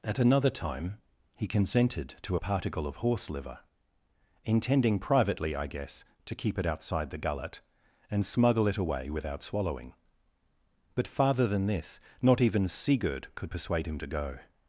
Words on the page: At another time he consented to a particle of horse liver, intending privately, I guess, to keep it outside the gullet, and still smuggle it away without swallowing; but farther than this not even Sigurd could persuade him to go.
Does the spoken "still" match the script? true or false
false